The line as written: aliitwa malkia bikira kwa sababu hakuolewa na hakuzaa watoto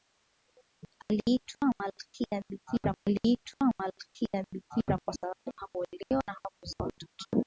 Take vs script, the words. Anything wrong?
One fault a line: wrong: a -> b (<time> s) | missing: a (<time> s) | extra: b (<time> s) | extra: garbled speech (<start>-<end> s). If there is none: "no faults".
extra: aliitwa malkia bikira (3.1 s)